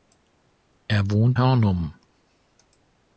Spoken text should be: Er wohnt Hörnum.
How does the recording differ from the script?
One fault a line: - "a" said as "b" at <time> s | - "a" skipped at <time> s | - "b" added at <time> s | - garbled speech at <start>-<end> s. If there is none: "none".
none